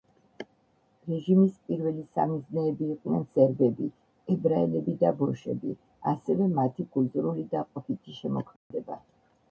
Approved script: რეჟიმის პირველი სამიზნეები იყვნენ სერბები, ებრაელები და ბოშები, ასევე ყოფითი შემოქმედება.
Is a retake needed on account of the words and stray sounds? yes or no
yes